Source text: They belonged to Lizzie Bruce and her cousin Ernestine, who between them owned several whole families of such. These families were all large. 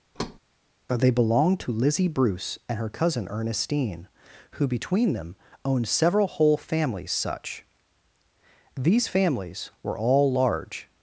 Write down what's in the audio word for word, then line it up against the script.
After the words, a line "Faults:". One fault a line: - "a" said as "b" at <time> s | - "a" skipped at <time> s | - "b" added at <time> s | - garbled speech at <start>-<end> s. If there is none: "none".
They belonged to Lizzie Bruce and her cousin Ernestine, who between them owned several whole families such. These families were all large.
Faults:
- "of" skipped at 7.1 s